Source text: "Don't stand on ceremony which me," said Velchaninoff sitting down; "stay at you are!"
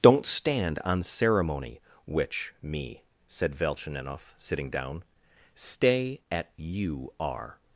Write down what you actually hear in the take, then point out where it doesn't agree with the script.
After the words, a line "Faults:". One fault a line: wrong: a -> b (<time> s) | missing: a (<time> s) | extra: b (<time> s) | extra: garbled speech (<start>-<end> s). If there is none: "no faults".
"Don't stand on ceremony which me," said Velchaninoff sitting down; "stay at you are!"
Faults:
no faults